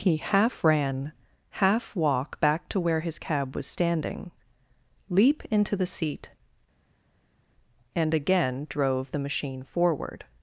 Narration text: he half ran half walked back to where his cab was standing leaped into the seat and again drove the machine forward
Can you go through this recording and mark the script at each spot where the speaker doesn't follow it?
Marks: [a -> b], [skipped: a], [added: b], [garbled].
he half ran half [walked -> walk] back to where his cab was standing [leaped -> leap] into the seat and again drove the machine forward